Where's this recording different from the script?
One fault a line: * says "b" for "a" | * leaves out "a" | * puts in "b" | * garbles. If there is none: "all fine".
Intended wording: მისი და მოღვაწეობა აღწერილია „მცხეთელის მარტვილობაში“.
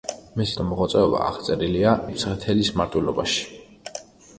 all fine